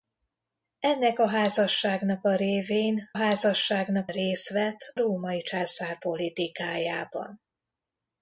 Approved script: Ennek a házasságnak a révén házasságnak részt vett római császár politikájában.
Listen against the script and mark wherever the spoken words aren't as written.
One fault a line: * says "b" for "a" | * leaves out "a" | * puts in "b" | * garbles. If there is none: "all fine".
all fine